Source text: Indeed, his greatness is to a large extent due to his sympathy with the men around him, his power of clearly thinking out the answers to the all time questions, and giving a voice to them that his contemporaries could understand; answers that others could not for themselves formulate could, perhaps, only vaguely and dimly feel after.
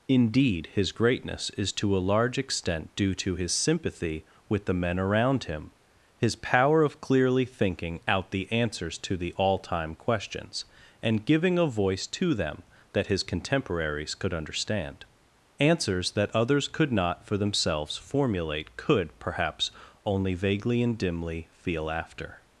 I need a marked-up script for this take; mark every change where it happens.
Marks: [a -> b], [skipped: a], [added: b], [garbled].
Indeed, his greatness is to a large extent due to his sympathy with the men around him, his power of clearly thinking out the answers to the all time questions, and giving a voice to them that his contemporaries could understand; answers that others could not for themselves formulate could, perhaps, only vaguely and dimly feel after.